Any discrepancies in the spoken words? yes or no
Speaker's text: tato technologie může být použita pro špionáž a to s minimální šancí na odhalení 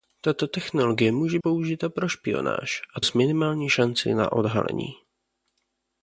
yes